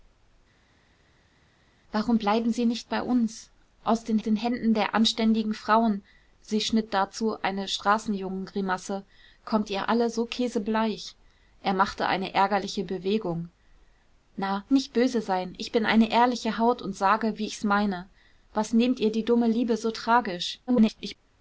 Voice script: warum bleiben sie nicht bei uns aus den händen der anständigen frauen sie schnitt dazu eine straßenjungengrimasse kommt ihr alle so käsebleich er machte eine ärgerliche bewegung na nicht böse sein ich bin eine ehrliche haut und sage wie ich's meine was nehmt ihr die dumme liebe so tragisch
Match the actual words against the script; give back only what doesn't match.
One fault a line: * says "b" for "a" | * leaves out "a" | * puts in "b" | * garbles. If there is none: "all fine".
* puts in "den"
* garbles